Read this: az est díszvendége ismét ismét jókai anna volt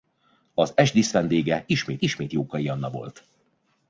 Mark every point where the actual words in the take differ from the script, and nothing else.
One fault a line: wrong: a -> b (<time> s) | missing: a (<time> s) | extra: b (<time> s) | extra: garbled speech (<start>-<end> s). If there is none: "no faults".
no faults